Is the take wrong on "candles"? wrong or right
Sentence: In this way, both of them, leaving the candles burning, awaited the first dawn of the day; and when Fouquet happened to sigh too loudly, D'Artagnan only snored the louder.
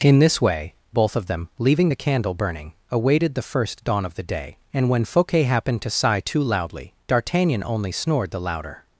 wrong